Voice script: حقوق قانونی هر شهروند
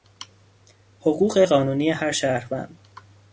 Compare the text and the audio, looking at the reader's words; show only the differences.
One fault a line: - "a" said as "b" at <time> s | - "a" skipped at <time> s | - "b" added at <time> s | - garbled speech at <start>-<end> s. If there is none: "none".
none